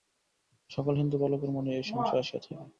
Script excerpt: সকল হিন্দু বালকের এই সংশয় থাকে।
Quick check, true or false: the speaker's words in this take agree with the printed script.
false